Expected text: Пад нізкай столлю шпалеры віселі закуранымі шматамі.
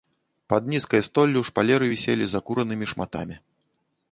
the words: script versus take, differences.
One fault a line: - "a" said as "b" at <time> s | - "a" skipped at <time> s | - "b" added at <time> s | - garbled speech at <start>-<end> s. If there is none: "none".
none